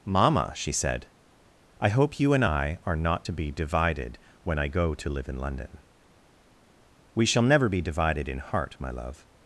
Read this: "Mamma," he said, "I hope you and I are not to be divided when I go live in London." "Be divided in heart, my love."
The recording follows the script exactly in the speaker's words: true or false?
false